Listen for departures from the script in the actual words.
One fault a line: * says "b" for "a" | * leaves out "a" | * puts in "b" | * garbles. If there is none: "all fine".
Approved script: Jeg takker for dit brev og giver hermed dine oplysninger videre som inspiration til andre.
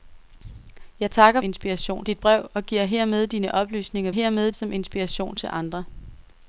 * says "inspiration" for "for"
* says "hermed" for "videre"